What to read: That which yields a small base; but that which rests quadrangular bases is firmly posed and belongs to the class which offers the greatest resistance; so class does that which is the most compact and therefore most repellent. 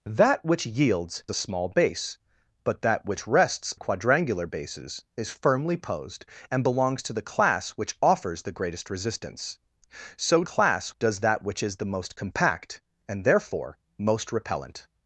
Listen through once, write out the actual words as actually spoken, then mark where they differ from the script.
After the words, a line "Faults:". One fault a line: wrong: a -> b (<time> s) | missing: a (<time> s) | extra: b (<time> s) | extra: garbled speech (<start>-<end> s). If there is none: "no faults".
That which yields a small base; but that which rests quadrangular bases is firmly posed and belongs to the class which offers the greatest resistance; so class does that which is the most compact and therefore most repellent.
Faults:
no faults